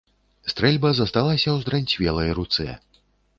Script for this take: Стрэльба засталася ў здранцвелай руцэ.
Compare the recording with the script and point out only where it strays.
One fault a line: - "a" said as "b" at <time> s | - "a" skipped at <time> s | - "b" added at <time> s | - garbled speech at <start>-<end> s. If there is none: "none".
none